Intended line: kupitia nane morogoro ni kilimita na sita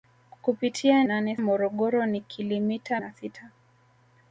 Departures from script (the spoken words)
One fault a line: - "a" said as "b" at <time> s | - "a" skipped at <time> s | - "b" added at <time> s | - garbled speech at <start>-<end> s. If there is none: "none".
none